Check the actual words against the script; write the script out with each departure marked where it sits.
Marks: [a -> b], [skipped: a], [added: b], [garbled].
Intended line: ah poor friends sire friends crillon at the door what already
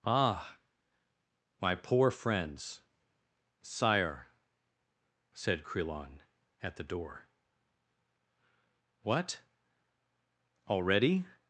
ah [added: my] poor friends sire [friends -> said] crillon at the door what already